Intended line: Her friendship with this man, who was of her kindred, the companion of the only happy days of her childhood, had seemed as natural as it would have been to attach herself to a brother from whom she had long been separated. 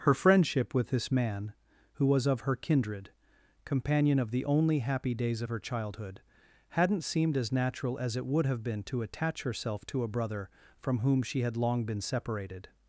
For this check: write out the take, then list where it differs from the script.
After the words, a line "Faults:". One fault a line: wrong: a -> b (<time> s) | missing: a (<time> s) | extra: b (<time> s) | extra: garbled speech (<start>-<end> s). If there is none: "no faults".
Her friendship with this man, who was of her kindred, companion of the only happy days of her childhood, hadn't seemed as natural as it would have been to attach herself to a brother from whom she had long been separated.
Faults:
missing: the (3.1 s)
wrong: had -> hadn't (6.7 s)